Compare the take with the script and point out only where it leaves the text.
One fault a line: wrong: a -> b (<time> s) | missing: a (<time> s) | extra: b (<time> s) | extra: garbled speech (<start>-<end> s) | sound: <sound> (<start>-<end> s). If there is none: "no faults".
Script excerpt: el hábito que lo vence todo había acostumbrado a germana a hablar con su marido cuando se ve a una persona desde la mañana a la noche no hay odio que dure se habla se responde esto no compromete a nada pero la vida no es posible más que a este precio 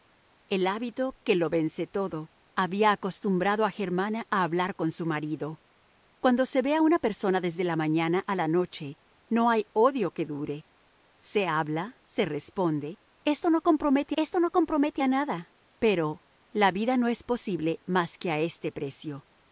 extra: esto no compromete (14.2 s)